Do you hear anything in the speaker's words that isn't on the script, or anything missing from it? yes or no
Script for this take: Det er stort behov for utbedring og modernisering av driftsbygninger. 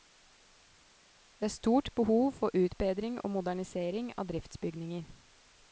no